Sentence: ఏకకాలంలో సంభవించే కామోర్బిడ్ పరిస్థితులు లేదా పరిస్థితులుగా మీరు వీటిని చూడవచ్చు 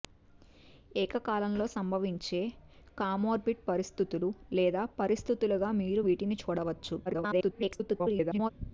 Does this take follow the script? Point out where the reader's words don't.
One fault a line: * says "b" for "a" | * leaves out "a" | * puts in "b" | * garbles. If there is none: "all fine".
* garbles